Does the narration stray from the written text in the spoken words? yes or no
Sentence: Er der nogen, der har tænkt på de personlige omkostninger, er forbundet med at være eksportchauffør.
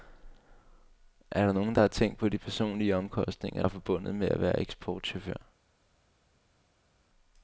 no